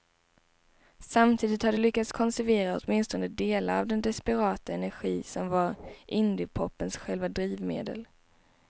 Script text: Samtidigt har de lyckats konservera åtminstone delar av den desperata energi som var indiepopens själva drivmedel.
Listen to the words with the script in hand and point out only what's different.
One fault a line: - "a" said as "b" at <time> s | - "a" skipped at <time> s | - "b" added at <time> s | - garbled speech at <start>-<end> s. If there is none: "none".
none